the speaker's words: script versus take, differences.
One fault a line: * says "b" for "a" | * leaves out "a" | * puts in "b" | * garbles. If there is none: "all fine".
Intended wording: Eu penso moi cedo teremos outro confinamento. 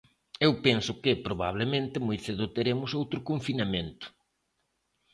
* puts in "que probablemente"